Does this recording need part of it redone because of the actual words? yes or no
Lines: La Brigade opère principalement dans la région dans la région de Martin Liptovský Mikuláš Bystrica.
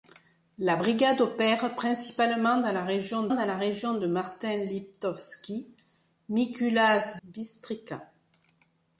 no